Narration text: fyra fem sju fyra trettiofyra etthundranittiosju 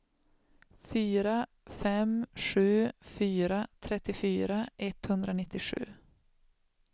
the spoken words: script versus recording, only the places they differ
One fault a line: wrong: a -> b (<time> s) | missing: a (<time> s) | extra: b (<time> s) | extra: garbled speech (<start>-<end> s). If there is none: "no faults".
no faults